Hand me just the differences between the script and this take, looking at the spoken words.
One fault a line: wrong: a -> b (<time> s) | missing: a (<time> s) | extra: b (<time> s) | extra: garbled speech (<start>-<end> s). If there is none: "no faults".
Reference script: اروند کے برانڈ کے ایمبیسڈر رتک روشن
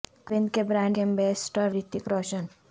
no faults